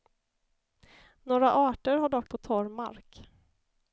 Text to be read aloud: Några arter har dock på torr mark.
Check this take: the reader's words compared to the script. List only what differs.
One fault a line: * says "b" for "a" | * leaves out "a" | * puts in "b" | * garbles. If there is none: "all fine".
all fine